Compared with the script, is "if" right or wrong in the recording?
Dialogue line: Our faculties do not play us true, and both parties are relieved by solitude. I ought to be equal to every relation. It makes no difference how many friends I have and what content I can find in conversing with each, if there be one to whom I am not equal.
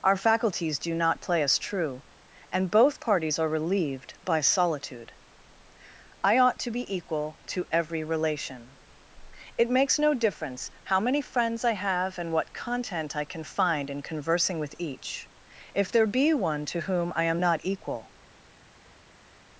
right